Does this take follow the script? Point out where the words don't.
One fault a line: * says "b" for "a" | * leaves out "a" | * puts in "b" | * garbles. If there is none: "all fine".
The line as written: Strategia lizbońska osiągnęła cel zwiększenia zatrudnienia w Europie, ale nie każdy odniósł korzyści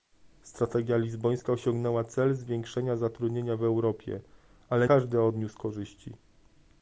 * leaves out "nie"